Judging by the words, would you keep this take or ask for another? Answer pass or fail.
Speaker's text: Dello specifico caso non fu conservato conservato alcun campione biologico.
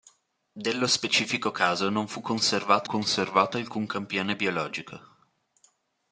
pass